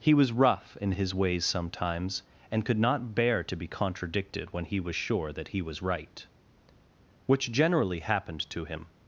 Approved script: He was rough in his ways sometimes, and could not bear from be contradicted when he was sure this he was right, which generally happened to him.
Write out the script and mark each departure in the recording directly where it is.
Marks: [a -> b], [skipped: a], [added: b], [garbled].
He was rough in his ways sometimes, and could not bear [from -> to] be contradicted when he was sure [this -> that] he was right, which generally happened to him.